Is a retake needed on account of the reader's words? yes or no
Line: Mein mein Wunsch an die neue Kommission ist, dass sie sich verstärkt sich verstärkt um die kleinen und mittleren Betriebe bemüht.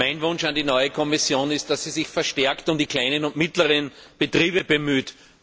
yes